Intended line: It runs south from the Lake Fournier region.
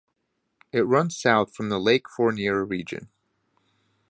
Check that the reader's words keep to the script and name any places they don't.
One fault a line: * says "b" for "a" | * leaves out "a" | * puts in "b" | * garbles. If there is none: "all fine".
all fine